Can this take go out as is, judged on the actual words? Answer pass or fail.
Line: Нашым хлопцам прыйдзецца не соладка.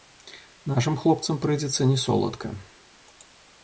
pass